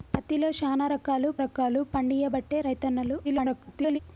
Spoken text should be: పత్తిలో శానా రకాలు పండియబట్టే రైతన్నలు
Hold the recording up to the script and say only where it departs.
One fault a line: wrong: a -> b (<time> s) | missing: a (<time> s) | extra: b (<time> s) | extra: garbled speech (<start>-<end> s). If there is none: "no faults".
extra: రకాలు (1.4 s)
extra: garbled speech (3.2-4.0 s)